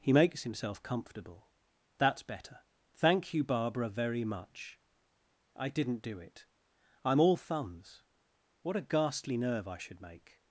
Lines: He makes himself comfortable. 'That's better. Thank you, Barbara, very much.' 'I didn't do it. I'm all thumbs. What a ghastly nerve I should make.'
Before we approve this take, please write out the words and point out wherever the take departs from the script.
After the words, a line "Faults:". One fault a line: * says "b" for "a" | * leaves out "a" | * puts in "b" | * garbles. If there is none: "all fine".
He makes himself comfortable. 'That's better. Thank you, Barbara, very much.' 'I didn't do it. I'm all thumbs. What a ghastly nerve I should make.'
Faults:
all fine